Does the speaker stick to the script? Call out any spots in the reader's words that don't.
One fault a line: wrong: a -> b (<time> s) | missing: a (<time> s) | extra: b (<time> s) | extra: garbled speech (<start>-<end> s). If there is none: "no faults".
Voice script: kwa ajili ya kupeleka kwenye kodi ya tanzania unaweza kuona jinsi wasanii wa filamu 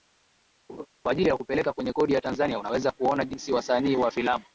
no faults